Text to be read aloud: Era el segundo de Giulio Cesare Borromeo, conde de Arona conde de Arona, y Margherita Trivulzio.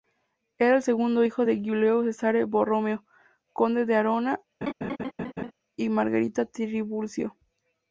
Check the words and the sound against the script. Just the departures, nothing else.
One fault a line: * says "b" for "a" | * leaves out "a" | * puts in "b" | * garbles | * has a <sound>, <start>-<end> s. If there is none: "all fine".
* puts in "hijo"
* leaves out "conde de Arona"
* has a laugh, 4.6-5.5 s